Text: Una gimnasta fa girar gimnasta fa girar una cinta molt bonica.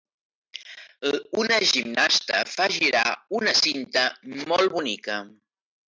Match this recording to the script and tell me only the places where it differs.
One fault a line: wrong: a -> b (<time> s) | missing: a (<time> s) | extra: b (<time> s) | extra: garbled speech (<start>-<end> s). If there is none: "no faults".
missing: gimnasta fa girar (3.0 s)